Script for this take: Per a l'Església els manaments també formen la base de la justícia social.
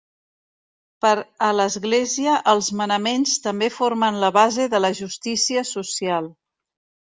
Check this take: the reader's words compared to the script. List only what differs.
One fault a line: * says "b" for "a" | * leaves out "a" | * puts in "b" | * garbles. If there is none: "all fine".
all fine